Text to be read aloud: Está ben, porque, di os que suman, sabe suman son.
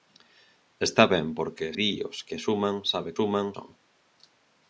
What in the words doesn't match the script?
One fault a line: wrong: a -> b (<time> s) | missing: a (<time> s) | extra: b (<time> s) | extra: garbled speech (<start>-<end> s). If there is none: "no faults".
no faults